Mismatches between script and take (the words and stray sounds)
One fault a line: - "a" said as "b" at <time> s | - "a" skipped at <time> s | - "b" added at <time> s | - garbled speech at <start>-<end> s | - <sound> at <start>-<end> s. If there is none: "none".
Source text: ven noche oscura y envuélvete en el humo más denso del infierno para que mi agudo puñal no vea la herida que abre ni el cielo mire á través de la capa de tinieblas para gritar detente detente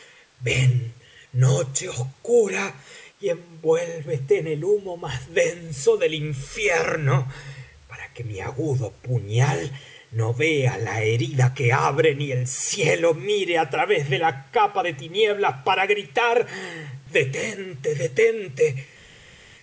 none